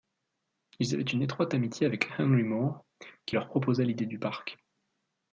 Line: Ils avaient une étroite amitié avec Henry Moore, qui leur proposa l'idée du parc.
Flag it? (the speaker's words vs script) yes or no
no